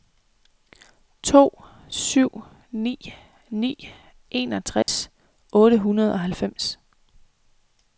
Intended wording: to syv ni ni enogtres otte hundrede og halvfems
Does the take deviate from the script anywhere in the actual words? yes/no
no